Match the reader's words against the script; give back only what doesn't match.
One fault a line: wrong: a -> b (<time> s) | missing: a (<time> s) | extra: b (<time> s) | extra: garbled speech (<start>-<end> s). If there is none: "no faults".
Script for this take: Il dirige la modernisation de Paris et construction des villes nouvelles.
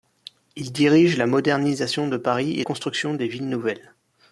no faults